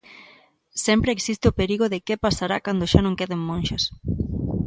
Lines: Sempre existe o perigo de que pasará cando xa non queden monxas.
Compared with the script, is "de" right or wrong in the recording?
right